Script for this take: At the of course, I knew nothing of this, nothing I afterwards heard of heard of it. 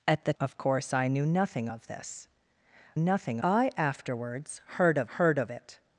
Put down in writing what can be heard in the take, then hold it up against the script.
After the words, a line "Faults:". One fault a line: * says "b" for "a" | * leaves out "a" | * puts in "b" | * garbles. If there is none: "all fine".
At the of course, I knew nothing of this, nothing I afterwards heard of heard of it.
Faults:
all fine